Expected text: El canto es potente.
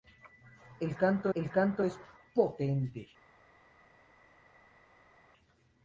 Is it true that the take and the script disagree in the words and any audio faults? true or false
true